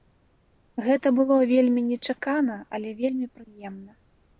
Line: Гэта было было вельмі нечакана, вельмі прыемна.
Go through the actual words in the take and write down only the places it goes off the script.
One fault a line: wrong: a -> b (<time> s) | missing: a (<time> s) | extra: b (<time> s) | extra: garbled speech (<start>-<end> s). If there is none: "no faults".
missing: было (1.4 s)
extra: але (2.8 s)